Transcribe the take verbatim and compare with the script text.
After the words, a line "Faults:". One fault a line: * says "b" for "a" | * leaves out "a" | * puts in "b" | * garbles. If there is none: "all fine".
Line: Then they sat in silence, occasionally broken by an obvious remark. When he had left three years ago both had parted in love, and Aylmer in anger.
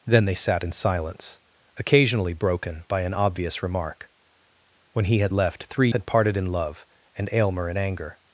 Then they sat in silence, occasionally broken by an obvious remark. When he had left three had parted in love, and Aylmer in anger.
Faults:
* leaves out "years ago both"